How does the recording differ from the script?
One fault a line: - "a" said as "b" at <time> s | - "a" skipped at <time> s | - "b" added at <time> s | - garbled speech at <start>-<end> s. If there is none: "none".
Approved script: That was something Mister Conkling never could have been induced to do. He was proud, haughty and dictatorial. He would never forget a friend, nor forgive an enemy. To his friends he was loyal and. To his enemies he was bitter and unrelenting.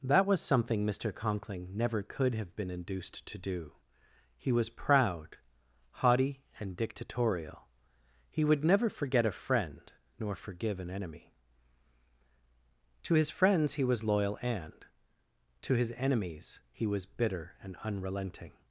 none